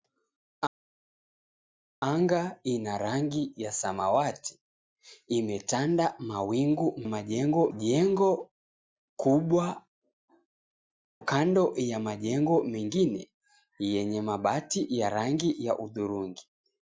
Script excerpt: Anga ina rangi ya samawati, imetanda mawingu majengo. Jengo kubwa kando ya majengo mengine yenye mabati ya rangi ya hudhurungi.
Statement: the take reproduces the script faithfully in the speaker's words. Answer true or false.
true